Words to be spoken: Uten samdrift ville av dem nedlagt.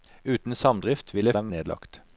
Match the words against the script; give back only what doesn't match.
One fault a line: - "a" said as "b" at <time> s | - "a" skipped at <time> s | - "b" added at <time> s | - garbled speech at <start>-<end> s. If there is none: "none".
none